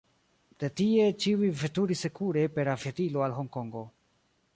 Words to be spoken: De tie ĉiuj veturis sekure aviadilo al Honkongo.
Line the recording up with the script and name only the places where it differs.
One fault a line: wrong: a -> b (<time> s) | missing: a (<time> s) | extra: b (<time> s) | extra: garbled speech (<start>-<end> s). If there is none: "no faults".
extra: per (2.6 s)